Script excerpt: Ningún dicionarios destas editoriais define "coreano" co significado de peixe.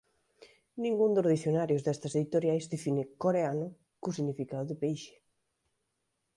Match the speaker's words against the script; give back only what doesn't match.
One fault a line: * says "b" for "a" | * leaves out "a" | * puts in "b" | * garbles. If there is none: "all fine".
* puts in "dos"